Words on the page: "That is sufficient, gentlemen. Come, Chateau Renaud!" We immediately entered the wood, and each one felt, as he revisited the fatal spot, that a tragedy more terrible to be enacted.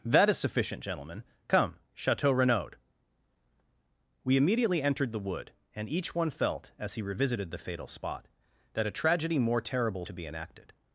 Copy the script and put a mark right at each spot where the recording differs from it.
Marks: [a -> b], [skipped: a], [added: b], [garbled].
"That is sufficient, gentlemen. Come, Chateau Renaud!" We immediately entered the wood, and each one felt, as he revisited the fatal spot, that a tragedy more terrible to be enacted.